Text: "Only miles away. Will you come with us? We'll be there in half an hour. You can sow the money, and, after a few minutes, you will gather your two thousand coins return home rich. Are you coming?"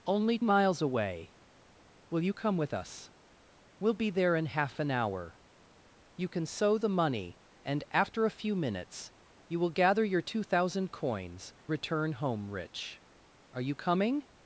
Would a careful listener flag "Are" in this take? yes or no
no